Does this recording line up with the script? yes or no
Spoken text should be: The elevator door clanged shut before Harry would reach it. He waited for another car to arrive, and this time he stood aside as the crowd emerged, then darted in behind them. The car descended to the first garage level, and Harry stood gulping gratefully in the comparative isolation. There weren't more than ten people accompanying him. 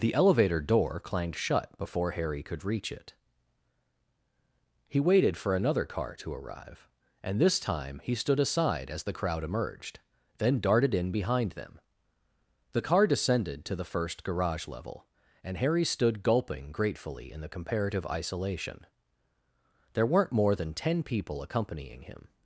no